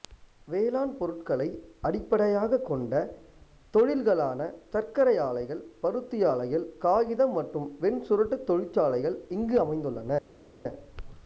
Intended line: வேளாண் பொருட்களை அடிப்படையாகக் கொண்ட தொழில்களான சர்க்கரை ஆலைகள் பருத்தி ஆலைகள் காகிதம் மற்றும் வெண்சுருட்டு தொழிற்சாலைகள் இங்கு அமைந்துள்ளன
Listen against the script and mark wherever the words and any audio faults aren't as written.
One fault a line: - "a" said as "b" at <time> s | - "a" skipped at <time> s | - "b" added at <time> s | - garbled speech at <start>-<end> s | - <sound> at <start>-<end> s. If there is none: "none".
none